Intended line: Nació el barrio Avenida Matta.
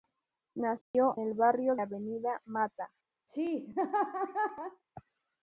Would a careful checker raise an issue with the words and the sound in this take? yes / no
yes